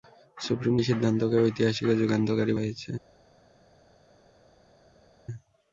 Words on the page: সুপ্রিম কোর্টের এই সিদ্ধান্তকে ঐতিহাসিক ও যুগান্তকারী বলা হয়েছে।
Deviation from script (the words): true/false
true